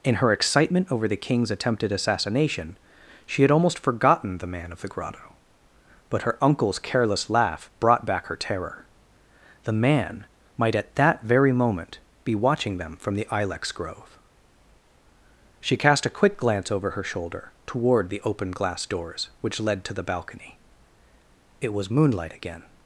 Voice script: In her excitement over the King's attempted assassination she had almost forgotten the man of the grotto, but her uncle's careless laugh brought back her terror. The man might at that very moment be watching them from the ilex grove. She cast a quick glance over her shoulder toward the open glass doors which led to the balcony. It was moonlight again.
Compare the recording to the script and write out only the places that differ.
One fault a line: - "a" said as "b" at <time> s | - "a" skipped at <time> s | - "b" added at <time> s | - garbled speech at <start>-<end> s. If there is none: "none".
none